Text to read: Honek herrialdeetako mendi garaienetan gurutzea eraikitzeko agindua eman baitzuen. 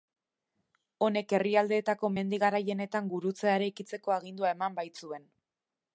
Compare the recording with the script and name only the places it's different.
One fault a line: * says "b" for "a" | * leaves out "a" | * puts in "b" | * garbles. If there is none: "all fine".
all fine